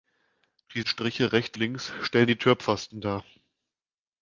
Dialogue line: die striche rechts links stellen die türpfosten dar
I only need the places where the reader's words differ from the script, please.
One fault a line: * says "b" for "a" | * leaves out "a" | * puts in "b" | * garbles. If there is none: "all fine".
all fine